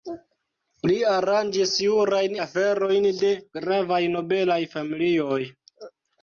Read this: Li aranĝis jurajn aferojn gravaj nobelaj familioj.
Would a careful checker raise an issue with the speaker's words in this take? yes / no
yes